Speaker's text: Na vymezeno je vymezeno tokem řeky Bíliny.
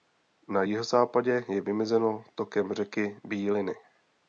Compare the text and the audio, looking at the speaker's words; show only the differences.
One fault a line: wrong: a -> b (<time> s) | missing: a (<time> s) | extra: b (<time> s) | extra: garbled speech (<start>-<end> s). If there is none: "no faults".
wrong: vymezeno -> jihozápadě (0.6 s)